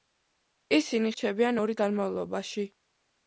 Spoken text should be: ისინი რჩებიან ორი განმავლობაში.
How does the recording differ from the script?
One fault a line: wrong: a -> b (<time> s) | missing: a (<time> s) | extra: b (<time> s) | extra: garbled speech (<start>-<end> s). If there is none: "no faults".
no faults